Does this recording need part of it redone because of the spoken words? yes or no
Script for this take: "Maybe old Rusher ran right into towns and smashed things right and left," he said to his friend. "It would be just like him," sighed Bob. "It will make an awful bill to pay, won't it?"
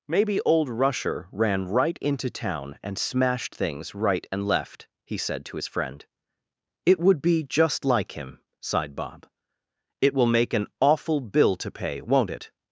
yes